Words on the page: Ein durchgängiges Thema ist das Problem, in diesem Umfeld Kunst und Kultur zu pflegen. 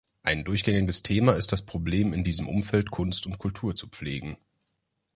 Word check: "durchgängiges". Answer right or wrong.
right